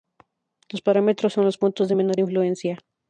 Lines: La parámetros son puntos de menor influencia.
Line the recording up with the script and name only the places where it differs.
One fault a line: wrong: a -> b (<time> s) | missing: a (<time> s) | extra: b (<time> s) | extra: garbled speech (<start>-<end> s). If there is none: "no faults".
wrong: La -> Los (0.7 s)
extra: los (1.4 s)